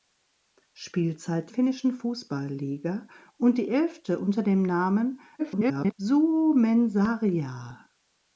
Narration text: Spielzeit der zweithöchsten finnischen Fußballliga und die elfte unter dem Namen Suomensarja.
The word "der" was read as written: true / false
false